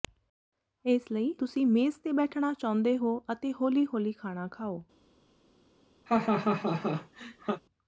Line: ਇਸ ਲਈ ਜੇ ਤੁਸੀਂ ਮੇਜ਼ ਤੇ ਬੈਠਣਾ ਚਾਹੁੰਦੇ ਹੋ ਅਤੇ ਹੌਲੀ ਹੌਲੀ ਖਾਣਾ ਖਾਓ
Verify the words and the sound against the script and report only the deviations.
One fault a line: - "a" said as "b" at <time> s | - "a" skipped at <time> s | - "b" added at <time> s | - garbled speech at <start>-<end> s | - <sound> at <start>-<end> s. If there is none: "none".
- "ਜੇ" skipped at 1.3 s
- laugh at 6.1-7.6 s